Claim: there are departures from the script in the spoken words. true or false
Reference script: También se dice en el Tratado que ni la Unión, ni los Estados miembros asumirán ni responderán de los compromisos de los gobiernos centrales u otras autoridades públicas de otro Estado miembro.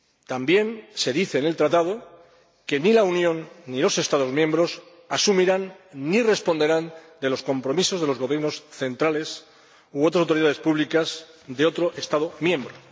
false